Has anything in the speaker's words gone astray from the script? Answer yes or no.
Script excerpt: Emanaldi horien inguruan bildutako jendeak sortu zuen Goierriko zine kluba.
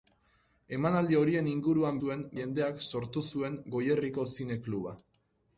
yes